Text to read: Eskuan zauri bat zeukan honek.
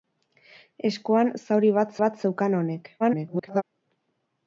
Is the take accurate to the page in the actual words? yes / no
no